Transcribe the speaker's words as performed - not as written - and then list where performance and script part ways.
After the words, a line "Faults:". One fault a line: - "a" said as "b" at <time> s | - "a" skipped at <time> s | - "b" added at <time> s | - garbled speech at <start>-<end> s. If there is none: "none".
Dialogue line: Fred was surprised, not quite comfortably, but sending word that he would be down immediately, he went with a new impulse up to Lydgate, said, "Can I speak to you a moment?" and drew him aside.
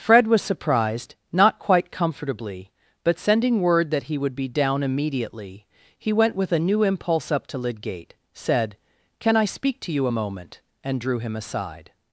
Fred was surprised, not quite comfortably, but sending word that he would be down immediately, he went with a new impulse up to Lydgate, said, "Can I speak to you a moment?" and drew him aside.
Faults:
none